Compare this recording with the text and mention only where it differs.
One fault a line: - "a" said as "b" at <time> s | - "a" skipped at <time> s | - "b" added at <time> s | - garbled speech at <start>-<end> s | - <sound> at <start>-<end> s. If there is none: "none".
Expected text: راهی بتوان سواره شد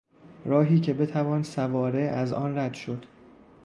- "که" added at 0.8 s
- "از آن رد" added at 2.0 s